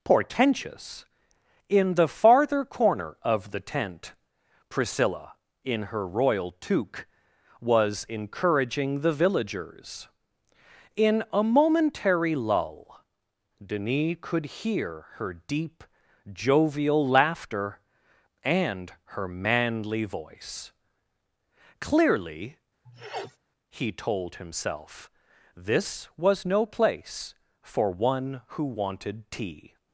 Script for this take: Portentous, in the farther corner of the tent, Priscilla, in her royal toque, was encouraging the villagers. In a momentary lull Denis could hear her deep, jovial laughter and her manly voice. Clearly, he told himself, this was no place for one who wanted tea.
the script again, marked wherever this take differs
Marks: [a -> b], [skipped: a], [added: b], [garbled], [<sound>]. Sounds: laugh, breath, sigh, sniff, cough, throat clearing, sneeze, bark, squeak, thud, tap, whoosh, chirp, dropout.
Portentous, in the farther corner of the tent, Priscilla, in her royal toque, was encouraging the villagers. In a momentary lull Denis could hear her deep, jovial laughter and her manly voice. Clearly, [sniff] he told himself, this was no place for one who wanted tea.